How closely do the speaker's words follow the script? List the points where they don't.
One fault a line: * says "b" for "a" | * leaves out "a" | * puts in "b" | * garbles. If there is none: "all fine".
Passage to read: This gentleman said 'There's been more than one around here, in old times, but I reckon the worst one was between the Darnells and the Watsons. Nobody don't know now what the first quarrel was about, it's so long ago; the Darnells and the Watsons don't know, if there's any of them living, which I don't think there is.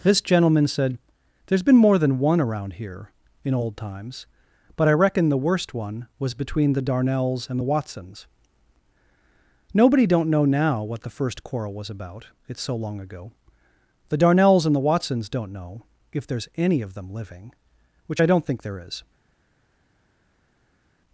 all fine